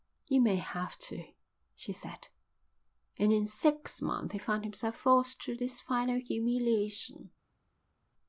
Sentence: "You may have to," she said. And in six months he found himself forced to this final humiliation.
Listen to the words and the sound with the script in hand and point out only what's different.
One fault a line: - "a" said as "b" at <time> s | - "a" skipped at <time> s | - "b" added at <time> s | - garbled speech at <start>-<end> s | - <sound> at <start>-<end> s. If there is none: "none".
none